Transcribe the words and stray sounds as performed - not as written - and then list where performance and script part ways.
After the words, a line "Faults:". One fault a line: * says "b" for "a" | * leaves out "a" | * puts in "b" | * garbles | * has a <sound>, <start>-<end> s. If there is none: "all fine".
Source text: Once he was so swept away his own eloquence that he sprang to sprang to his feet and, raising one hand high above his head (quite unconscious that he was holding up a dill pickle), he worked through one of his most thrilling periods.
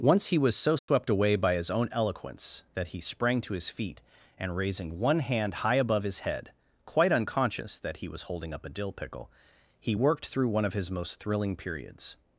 Once he was so swept away by his own eloquence that he sprang to his feet and, raising one hand high above his head (quite unconscious that he was holding up a dill pickle), he worked through one of his most thrilling periods.
Faults:
* has a dropout, 0.8-0.9 s
* puts in "by"
* leaves out "sprang to"